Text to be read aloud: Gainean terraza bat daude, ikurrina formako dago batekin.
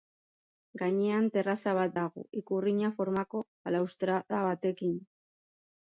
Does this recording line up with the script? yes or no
no